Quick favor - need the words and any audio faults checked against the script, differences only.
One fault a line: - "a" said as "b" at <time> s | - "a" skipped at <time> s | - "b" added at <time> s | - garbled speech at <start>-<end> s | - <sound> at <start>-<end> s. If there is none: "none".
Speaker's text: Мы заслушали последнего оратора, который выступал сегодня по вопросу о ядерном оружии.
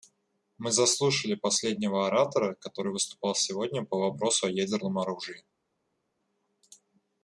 none